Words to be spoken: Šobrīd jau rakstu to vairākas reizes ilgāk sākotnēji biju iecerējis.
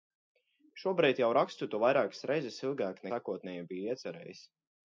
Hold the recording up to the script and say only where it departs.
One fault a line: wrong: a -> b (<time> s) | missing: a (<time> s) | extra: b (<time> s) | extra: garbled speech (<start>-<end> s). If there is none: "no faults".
no faults